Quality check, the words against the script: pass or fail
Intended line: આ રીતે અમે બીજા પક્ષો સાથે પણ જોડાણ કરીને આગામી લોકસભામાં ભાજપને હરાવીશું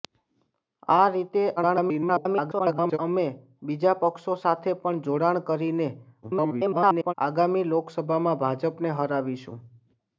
fail